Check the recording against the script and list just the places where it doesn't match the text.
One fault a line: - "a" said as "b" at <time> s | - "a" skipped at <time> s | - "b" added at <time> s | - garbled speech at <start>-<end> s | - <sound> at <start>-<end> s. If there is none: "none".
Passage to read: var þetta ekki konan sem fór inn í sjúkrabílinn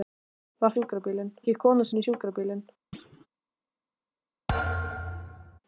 - "þetta" said as "sjúkrabílinn" at 0.8 s
- "sem fór" skipped at 1.9 s
- thud at 2.9-3.3 s
- thud at 4.5-5.6 s